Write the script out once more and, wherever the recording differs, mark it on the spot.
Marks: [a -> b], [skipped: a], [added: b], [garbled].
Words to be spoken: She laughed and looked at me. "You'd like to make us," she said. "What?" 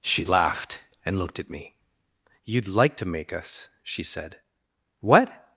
She laughed and looked at me. "You'd like to make us," she said. "What?"